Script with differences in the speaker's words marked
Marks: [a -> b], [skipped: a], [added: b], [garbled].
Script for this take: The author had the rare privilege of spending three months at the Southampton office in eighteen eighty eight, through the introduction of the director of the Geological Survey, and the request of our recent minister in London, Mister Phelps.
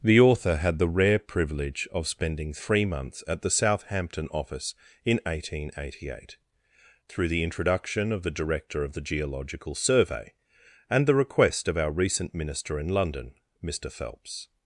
The author had the rare privilege of spending three months at the Southampton office in eighteen eighty eight, through the introduction of the director of the Geological Survey, and the request of our recent minister in London, Mister Phelps.